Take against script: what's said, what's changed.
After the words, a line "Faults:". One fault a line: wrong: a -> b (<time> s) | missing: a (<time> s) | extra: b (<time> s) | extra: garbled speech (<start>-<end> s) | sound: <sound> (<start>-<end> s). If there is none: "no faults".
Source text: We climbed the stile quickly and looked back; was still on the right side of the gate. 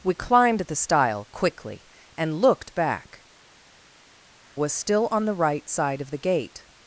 We climbed the stile quickly and looked back; was still on the right side of the gate.
Faults:
no faults